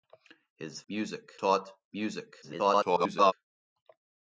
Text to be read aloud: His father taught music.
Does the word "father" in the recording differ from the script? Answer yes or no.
yes